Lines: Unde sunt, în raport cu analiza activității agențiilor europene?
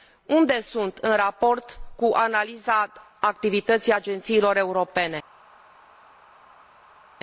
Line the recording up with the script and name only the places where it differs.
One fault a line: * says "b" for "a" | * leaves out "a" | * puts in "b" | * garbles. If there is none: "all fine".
all fine